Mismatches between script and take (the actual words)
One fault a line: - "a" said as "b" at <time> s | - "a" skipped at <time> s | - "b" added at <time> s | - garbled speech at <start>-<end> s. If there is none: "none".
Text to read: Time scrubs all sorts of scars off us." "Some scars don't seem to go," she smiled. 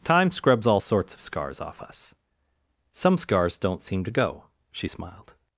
none